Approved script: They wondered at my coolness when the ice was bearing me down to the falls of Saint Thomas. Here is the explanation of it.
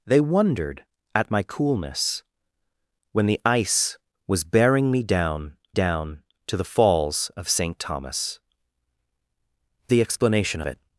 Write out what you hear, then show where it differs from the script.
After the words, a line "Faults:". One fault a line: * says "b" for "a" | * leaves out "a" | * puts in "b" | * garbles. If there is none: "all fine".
They wondered at my coolness when the ice was bearing me down down to the falls of Saint Thomas. The explanation it.
Faults:
* puts in "down"
* leaves out "Here is"
* leaves out "of"